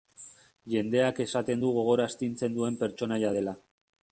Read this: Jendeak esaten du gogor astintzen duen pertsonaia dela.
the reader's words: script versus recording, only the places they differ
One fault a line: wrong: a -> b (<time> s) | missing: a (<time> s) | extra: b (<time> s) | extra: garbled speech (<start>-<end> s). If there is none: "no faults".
no faults